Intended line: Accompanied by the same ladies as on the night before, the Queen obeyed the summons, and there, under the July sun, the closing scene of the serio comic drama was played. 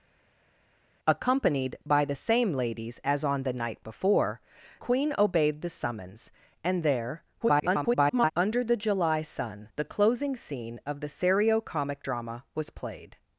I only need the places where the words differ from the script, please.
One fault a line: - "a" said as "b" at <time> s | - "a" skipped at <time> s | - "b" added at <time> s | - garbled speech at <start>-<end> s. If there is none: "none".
- "the" skipped at 4.4 s
- garbled speech at 7.4-8.3 s